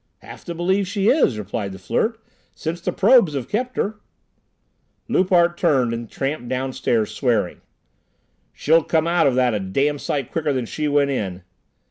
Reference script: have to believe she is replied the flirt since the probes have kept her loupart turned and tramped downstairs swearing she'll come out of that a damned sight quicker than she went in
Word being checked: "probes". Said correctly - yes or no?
yes